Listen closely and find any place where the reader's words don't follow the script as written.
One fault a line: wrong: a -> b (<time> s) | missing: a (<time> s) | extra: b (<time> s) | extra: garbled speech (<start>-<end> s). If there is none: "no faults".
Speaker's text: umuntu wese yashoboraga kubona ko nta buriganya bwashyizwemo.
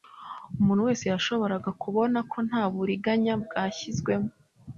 no faults